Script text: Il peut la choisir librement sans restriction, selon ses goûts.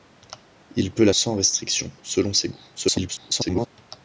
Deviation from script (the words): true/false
true